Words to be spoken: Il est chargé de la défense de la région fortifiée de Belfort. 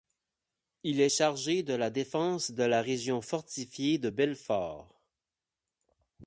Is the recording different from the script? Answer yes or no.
no